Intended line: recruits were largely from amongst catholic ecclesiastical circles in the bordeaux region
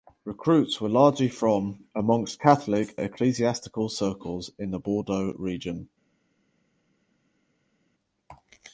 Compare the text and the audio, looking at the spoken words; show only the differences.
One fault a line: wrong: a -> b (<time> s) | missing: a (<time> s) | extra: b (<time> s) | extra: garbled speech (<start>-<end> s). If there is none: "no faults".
no faults